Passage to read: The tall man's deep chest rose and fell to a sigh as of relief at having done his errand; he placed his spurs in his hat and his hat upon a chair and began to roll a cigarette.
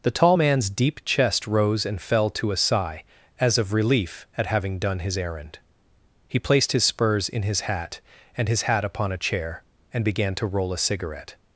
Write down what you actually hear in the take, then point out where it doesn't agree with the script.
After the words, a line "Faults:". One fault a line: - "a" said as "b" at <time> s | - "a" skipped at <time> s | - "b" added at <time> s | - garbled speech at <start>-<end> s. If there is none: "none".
The tall man's deep chest rose and fell to a sigh as of relief at having done his errand; he placed his spurs in his hat and his hat upon a chair and began to roll a cigarette.
Faults:
none